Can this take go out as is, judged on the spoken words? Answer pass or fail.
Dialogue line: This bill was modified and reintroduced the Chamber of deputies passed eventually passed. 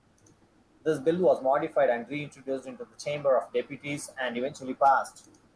fail